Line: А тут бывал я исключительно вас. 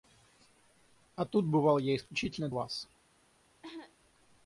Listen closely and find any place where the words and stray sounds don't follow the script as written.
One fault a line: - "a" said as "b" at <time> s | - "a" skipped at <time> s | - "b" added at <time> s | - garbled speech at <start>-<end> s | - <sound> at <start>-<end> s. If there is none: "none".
- cough at 3.6-4.0 s